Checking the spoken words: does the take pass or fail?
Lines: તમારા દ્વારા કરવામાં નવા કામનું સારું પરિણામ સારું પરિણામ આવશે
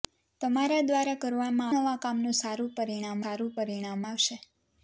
pass